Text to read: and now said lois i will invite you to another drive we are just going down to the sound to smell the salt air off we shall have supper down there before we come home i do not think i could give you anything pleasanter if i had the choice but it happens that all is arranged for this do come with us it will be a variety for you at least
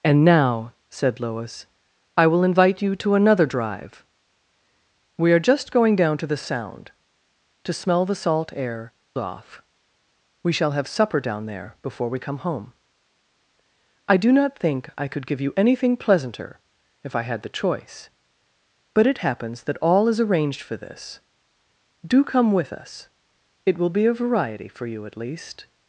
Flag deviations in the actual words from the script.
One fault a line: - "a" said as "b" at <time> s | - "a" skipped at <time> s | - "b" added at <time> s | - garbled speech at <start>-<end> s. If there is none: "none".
none